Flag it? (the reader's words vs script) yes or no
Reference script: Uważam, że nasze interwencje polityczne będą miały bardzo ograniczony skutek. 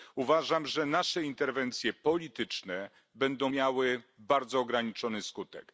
no